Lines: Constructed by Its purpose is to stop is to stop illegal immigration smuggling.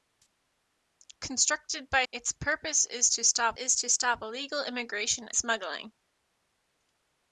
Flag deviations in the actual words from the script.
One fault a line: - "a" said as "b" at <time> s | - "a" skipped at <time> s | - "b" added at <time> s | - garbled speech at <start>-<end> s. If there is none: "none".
none